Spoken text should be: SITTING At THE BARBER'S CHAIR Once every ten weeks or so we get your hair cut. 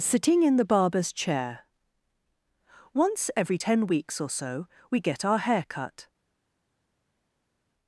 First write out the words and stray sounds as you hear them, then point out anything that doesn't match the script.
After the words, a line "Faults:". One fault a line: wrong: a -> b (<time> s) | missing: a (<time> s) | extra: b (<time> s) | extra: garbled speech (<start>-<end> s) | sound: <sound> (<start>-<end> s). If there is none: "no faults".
SITTING IN THE BARBER'S CHAIR Once every ten weeks or so we get our hair cut.
Faults:
wrong: At -> IN (0.4 s)
wrong: your -> our (5.2 s)